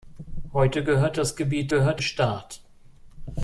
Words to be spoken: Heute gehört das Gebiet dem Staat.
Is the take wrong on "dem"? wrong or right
wrong